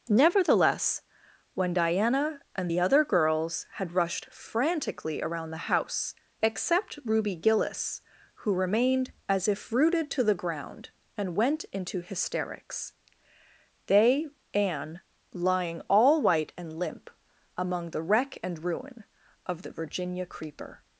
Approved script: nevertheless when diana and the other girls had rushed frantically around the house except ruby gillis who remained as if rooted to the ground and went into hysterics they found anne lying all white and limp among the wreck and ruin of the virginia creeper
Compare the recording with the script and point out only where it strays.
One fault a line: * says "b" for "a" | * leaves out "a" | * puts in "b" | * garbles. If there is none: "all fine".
* leaves out "found"